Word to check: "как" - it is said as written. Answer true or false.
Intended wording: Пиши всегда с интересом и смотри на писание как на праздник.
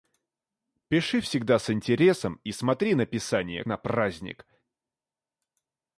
false